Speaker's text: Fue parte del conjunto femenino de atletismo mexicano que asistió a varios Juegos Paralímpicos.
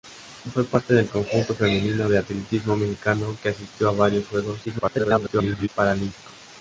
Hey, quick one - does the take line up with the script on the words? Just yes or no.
no